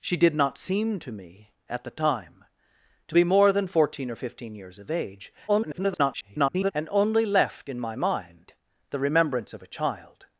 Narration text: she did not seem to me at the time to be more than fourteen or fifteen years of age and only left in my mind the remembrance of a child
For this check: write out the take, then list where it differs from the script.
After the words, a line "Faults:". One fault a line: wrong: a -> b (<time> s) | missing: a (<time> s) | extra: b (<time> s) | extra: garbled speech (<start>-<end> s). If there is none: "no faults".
she did not seem to me at the time to be more than fourteen or fifteen years of age [garbled] and only left in my mind the remembrance of a child
Faults:
extra: garbled speech (5.5-6.7 s)